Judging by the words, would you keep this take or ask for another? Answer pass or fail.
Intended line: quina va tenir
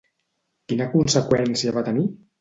fail